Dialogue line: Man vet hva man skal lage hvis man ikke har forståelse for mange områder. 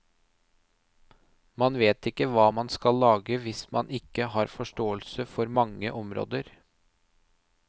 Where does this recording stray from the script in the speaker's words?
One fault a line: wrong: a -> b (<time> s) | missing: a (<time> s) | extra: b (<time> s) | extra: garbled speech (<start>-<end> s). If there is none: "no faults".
extra: ikke (2.1 s)